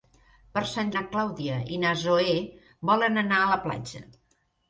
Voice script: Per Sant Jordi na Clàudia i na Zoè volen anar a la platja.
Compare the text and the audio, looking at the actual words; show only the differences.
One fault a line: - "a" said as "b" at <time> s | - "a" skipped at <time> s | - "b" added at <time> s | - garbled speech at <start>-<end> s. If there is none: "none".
- "Jordi" skipped at 0.9 s